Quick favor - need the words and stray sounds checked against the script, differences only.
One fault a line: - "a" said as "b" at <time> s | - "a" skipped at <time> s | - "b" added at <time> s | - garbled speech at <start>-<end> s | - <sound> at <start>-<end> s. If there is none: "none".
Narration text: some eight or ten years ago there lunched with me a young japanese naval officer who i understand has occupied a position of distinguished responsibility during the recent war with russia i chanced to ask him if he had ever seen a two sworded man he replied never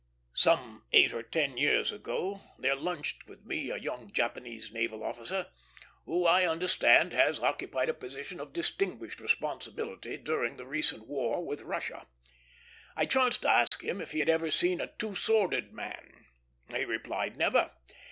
- dropout at 13.7-13.7 s